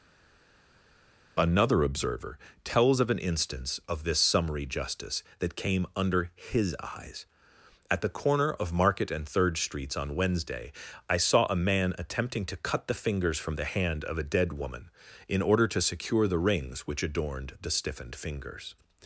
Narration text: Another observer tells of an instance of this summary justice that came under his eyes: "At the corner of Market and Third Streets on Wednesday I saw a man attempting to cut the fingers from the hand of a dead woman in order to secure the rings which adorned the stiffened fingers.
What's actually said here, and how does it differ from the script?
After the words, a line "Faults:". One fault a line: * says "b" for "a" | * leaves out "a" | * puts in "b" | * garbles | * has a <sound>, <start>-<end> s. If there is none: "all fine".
Another observer tells of an instance of this summary justice that came under his eyes: "At the corner of Market and Third Streets on Wednesday I saw a man attempting to cut the fingers from the hand of a dead woman in order to secure the rings which adorned the stiffened fingers.
Faults:
all fine